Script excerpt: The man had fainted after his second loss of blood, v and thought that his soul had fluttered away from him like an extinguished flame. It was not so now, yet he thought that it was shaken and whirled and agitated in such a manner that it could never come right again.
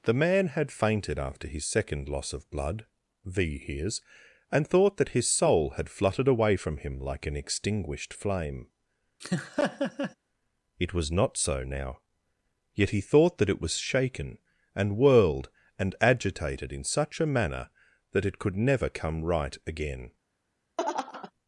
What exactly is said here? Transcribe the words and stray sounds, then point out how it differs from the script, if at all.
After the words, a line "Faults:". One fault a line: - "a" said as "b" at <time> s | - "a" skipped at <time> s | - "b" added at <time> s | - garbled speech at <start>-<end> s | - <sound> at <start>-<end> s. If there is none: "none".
The man had fainted after his second loss of blood, v hears and thought that his soul had fluttered away from him like an extinguished flame. It was not so now, yet he thought that it was shaken and whirled and agitated in such a manner that it could never come right again.
Faults:
- "hears" added at 3.6 s
- laugh at 9.2-10.2 s
- laugh at 20.8-21.3 s